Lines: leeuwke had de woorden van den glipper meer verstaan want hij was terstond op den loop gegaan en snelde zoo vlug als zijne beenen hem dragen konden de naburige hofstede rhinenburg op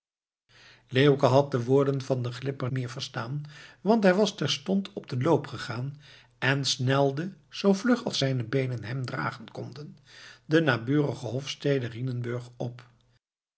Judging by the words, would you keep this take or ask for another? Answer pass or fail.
pass